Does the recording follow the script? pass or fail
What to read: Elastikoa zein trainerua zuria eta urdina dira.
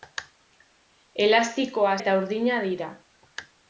fail